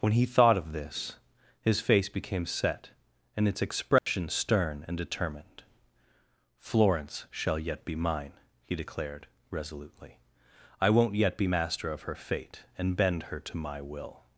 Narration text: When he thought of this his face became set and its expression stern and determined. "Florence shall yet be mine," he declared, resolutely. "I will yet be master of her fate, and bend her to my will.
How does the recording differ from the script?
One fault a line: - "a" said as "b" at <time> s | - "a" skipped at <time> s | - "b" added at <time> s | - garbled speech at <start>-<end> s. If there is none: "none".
- "will" said as "won't" at 10.9 s